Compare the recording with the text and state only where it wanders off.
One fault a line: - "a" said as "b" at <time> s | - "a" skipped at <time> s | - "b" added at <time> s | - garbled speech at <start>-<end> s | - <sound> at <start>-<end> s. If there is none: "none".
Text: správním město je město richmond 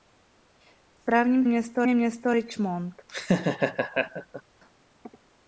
- laugh at 3.1-4.4 s